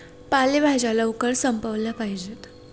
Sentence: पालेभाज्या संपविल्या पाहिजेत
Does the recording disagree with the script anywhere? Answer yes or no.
yes